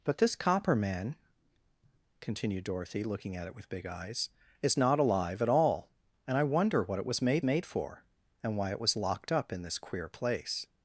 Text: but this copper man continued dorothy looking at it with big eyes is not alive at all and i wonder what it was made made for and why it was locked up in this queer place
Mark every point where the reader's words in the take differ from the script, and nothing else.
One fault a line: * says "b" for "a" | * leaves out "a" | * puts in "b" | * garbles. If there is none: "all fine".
all fine